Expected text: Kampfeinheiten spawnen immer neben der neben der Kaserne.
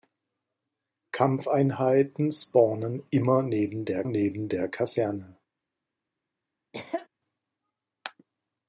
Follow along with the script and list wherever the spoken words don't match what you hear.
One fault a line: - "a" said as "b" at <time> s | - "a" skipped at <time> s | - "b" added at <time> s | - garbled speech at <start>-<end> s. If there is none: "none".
none